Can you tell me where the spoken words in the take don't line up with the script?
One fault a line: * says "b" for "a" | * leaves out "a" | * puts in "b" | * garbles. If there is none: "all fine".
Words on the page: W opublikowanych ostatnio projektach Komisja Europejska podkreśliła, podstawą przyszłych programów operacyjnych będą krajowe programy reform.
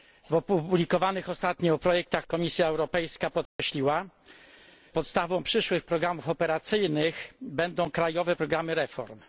all fine